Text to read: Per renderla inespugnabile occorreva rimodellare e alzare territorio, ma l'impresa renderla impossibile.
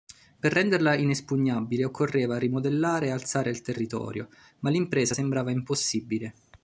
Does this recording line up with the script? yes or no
no